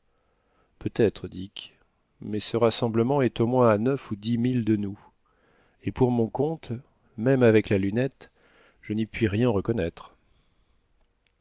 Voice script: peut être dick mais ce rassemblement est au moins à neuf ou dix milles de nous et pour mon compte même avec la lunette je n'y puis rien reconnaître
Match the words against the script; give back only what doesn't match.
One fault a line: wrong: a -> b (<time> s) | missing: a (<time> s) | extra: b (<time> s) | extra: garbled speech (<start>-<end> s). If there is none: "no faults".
no faults